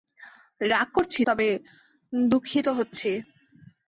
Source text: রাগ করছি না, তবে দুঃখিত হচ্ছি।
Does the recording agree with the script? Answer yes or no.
no